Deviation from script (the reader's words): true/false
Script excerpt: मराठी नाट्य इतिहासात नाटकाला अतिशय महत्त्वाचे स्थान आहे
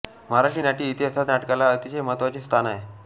false